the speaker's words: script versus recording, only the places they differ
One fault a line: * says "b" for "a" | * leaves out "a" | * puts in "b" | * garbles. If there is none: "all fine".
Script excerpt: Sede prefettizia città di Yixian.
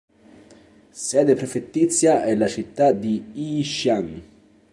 * puts in "è la"